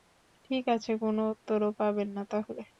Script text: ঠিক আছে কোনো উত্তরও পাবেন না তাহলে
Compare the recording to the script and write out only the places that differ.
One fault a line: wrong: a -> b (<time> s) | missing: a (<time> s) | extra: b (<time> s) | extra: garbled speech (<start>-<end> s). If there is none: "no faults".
no faults